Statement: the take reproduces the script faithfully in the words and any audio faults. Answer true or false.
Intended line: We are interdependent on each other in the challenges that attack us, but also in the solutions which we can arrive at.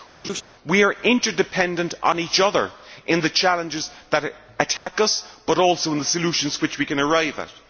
false